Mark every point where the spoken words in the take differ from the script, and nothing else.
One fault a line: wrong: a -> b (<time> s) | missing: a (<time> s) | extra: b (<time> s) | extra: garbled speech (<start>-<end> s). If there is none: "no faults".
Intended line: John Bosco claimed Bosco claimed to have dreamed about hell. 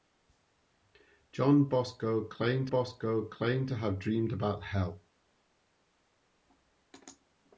no faults